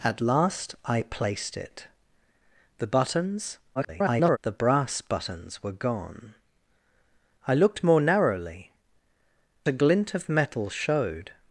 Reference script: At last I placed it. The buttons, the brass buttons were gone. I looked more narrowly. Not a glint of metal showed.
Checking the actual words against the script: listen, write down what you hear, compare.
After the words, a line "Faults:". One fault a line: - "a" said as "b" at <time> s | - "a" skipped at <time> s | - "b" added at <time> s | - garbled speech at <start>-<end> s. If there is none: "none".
At last I placed it. The buttons, [garbled] the brass buttons were gone. I looked more narrowly. A glint of metal showed.
Faults:
- garbled speech at 3.8-4.4 s
- "Not" skipped at 8.7 s